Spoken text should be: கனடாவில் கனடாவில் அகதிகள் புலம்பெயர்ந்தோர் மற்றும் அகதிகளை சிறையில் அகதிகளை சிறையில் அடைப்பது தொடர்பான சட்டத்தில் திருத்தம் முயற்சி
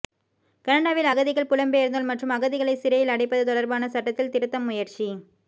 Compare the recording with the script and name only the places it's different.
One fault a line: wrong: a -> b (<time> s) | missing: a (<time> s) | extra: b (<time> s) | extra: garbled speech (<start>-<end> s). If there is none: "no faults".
missing: கனடாவில் (1.1 s)
missing: அகதிகளை சிறையில் (3.1 s)